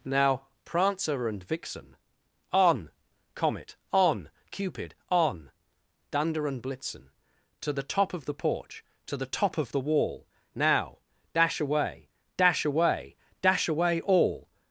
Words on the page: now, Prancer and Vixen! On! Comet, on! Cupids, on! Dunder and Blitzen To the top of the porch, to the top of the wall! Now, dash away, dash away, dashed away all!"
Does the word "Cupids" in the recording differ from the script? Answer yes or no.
yes